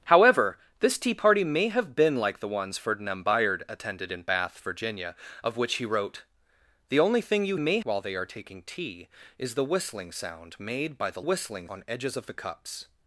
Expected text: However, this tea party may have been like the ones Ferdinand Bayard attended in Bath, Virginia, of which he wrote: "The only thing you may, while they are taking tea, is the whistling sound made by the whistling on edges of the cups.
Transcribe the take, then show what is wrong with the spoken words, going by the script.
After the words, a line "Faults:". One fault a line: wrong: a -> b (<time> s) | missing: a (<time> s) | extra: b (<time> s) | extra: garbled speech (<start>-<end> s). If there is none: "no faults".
However, this tea party may have been like the ones Ferdinand Bayard attended in Bath, Virginia, of which he wrote: "The only thing you may, while they are taking tea, is the whistling sound made by the whistling on edges of the cups.
Faults:
no faults